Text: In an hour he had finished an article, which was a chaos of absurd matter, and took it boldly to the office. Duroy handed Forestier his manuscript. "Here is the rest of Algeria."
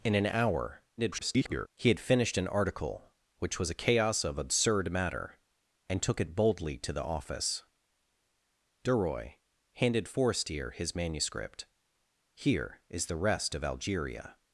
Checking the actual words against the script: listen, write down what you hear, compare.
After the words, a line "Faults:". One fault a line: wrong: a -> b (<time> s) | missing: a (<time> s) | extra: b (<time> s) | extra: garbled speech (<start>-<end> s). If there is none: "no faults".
In an hour [garbled] he had finished an article, which was a chaos of absurd matter, and took it boldly to the office. Duroy handed Forestier his manuscript. "Here is the rest of Algeria."
Faults:
extra: garbled speech (1.0-1.7 s)